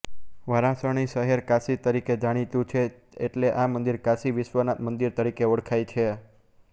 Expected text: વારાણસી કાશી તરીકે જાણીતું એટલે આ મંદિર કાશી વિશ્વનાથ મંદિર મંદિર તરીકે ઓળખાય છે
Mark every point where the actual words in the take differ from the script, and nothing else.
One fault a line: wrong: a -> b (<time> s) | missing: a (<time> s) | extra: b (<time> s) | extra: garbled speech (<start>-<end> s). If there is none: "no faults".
extra: શહેર (1.1 s)
extra: છે (2.7 s)
missing: મંદિર (5.2 s)